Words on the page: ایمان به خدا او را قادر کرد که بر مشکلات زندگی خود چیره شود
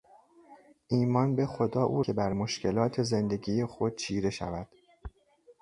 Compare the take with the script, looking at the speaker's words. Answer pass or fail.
fail